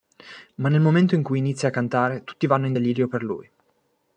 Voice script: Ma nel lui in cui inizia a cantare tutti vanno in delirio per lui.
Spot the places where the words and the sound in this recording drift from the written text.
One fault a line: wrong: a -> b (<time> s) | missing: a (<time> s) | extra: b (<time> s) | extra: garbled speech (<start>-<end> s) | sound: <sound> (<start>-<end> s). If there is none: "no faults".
wrong: lui -> momento (0.8 s)